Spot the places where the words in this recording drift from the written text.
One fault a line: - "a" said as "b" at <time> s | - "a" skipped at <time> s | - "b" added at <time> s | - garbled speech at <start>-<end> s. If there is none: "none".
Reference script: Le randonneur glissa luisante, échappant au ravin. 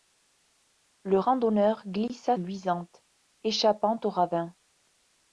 none